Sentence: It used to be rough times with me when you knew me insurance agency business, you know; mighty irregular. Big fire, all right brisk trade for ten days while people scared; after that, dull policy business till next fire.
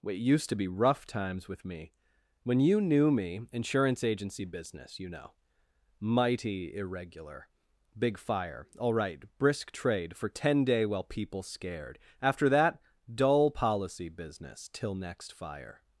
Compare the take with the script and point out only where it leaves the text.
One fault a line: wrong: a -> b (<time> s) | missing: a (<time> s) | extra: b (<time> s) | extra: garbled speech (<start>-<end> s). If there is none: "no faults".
wrong: days -> day (10.7 s)